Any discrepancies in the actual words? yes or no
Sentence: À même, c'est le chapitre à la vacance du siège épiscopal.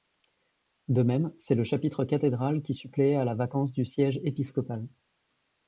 yes